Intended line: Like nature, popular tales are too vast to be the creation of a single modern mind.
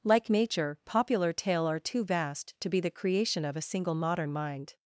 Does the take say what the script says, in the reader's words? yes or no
no